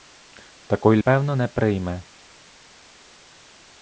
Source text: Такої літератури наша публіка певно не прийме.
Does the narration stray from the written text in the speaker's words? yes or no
yes